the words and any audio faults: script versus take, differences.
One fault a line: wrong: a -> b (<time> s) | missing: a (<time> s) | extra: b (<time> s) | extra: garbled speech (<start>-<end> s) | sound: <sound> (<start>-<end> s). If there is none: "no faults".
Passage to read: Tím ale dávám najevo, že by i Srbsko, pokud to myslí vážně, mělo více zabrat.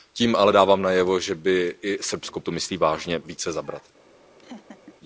missing: pokud (2.4 s)
missing: mělo (3.2 s)
sound: laugh (4.4-4.9 s)